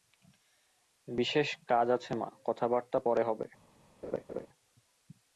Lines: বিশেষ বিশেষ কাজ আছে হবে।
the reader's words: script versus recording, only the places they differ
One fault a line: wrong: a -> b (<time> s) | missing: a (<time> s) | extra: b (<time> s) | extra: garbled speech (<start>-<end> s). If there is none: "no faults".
missing: বিশেষ (1.5 s)
extra: মা কথাবার্তা পরে (2.2 s)